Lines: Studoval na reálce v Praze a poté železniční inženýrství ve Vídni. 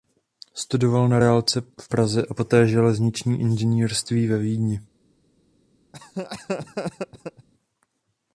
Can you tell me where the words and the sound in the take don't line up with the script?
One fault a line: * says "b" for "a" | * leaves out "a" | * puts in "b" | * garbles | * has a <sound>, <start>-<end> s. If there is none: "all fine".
* has a laugh, 5.9-7.5 s